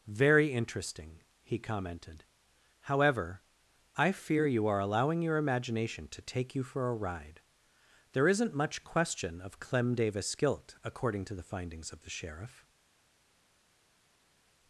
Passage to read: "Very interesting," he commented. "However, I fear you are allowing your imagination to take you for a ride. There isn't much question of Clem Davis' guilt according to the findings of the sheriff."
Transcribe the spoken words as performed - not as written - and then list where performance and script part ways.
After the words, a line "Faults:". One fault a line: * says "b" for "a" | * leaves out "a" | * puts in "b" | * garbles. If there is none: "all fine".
"Very interesting," he commented. "However, I fear you are allowing your imagination to take you for a ride. There isn't much question of Clem Davis' guilt according to the findings of the sheriff."
Faults:
all fine